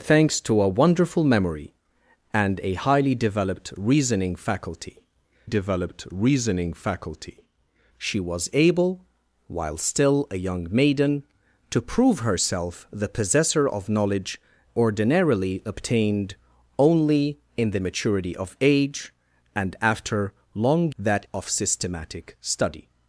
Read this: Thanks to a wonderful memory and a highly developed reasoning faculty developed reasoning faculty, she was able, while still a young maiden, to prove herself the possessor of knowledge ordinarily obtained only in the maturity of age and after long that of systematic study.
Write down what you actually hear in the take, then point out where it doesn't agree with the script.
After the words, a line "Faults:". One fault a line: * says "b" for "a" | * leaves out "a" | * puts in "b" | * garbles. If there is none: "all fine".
Thanks to a wonderful memory and a highly developed reasoning faculty developed reasoning faculty, she was able, while still a young maiden, to prove herself the possessor of knowledge ordinarily obtained only in the maturity of age and after long that of systematic study.
Faults:
all fine